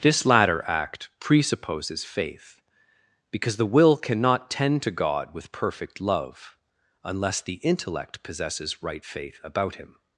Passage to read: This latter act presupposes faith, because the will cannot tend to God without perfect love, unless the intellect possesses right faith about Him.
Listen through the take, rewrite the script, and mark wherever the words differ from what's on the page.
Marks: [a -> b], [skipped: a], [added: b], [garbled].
This latter act presupposes faith, because the will cannot tend to God [without -> with] perfect love, unless the intellect possesses right faith about Him.